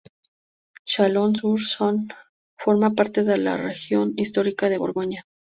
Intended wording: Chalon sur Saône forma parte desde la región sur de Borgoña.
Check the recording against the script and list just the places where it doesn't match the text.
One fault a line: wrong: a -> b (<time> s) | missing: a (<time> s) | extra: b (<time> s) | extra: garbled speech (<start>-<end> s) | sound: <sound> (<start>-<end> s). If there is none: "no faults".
wrong: desde -> de (3.2 s)
wrong: sur -> histórica (4.1 s)